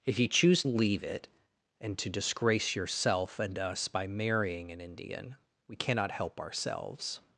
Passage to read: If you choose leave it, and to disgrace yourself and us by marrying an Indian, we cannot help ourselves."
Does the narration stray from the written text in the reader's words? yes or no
no